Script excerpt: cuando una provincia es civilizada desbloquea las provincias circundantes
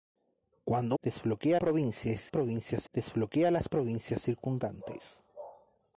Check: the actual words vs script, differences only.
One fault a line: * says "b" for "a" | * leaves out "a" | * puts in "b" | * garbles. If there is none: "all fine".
* says "desbloquea" for "una"
* says "provincias" for "civilizada"